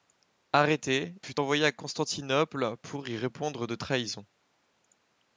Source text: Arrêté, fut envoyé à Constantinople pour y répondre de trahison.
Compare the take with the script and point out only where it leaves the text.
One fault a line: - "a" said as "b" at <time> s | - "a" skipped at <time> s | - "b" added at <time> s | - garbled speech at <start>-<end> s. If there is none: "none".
none